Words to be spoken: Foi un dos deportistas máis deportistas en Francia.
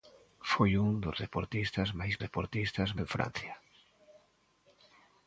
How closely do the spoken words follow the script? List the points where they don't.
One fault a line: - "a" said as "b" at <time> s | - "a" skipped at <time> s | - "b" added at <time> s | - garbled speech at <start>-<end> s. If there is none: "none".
none